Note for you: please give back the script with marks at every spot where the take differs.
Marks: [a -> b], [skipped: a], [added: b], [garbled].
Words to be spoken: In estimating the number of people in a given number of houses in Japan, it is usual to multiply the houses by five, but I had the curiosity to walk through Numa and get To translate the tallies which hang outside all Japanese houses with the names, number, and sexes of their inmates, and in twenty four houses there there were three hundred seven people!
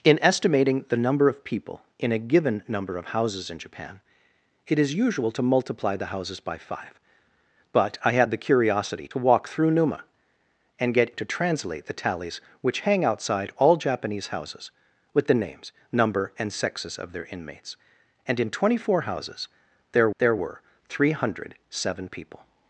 In estimating the number of people in a given number of houses in Japan, it is usual to multiply the houses by five, but I had the curiosity to walk through Numa and get To translate the tallies which hang outside all Japanese houses with the names, number, and sexes of their inmates, and in twenty four houses there there were three hundred seven people!